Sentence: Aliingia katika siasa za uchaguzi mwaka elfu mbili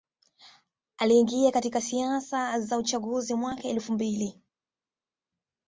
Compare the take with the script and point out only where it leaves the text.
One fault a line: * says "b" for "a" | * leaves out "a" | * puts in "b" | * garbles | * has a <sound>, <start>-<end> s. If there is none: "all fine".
all fine